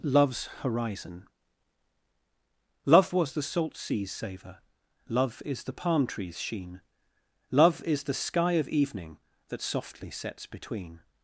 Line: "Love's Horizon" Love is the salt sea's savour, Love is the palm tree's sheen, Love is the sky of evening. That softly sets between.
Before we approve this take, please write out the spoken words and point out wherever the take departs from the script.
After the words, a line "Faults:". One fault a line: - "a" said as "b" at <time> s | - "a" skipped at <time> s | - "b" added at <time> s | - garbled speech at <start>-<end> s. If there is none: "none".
"Love's Horizon" Love was the salt sea's savour, Love is the palm tree's sheen, Love is the sky of evening. That softly sets between.
Faults:
- "is" said as "was" at 3.1 s